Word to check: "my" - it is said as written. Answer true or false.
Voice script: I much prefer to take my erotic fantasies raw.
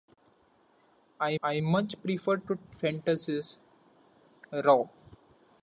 false